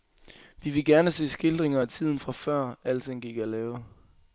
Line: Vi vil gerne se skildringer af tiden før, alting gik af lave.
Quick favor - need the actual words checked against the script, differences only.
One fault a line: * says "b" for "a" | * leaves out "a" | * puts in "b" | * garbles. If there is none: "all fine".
* puts in "fra"